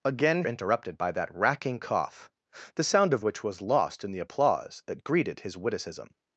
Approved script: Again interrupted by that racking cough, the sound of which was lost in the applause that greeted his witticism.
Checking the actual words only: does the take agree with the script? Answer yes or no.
yes